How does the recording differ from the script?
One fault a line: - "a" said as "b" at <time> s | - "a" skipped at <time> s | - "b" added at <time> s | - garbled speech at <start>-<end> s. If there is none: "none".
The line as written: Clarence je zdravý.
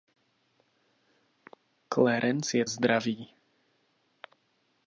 none